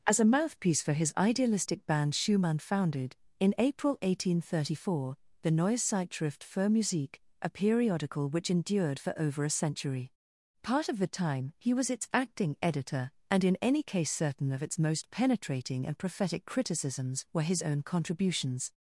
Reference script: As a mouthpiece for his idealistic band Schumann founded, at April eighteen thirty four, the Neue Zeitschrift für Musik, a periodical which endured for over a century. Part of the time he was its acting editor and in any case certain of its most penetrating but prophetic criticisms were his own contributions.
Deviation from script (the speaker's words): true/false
true